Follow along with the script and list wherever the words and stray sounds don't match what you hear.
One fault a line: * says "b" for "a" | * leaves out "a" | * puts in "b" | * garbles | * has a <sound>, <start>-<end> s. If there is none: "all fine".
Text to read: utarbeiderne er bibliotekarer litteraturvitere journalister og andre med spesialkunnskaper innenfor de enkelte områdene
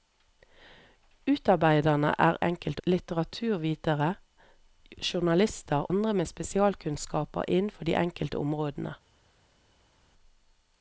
* says "enkelte" for "bibliotekarer"
* leaves out "og"